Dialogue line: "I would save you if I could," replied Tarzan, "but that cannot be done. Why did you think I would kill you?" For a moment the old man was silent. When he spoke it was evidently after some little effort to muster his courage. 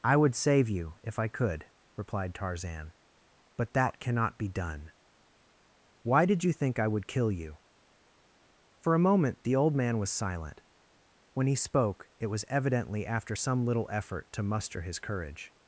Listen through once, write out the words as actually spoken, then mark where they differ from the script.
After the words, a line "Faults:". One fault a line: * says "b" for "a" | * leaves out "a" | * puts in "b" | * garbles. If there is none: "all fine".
"I would save you if I could," replied Tarzan, "but that cannot be done. Why did you think I would kill you?" For a moment the old man was silent. When he spoke it was evidently after some little effort to muster his courage.
Faults:
all fine